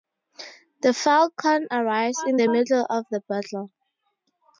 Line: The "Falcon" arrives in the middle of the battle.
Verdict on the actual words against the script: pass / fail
pass